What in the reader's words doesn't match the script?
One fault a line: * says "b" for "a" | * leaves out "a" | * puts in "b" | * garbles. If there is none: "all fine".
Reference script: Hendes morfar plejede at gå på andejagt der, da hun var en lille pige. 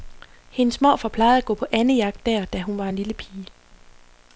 all fine